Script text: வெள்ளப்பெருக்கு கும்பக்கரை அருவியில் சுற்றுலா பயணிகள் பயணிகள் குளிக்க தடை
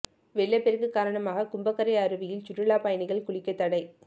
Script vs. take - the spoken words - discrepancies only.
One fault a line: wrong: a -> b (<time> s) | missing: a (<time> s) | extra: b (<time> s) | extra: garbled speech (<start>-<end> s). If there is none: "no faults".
extra: காரணமாக (0.9 s)
missing: பயணிகள் (3.3 s)